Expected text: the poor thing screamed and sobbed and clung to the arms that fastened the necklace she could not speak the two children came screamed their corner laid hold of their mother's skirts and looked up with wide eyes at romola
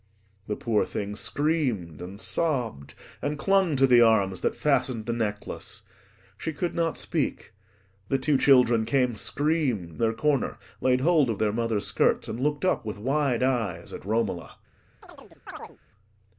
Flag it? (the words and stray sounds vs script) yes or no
yes